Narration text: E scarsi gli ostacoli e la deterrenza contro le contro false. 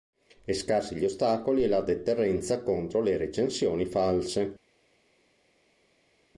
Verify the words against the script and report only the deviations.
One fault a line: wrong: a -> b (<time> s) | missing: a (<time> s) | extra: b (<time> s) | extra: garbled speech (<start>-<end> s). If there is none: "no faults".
wrong: contro -> recensioni (3.2 s)